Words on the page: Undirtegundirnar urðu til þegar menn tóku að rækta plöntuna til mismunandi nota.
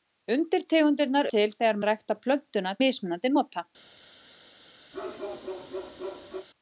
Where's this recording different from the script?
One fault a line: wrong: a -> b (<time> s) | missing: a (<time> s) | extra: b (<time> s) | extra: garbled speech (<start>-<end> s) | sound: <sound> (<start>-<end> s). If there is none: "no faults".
missing: urðu (1.3 s)
missing: menn tóku (1.8 s)
missing: til (2.8 s)
sound: bark (4.9-6.5 s)